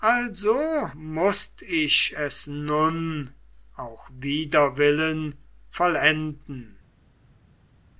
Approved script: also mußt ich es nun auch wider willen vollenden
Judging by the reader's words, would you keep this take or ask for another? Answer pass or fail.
pass